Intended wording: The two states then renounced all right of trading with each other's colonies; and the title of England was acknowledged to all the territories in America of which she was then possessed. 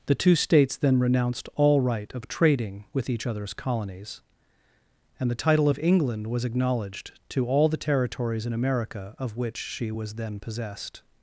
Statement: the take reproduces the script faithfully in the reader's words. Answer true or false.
true